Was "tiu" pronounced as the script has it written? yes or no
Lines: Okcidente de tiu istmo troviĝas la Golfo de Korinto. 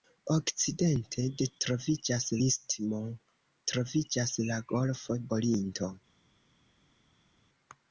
no